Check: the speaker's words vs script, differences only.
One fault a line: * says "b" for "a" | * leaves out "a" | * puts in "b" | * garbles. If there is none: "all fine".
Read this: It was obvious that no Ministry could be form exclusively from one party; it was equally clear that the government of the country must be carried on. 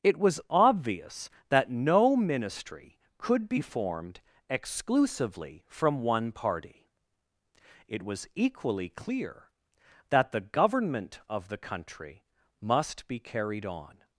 * says "formed" for "form"